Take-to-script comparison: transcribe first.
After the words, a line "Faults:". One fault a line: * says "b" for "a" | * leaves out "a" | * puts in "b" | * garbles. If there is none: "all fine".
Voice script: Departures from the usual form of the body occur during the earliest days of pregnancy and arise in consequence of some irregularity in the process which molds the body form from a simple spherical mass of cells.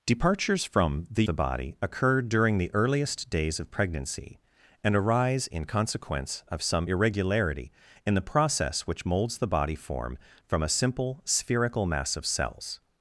Departures from the the body occur during the earliest days of pregnancy and arise in consequence of some irregularity in the process which molds the body form from a simple spherical mass of cells.
Faults:
* leaves out "usual form of"